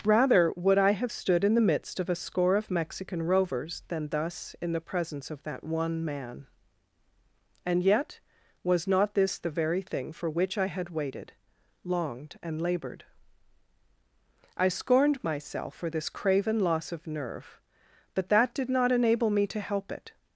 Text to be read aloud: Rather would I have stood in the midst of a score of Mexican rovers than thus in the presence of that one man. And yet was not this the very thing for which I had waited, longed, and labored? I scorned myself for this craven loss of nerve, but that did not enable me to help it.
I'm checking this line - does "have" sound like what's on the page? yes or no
yes